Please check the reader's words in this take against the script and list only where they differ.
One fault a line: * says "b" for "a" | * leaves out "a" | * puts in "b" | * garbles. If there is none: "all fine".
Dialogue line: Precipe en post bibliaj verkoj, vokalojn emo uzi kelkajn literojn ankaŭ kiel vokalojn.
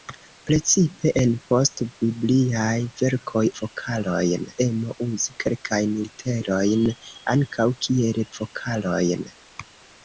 all fine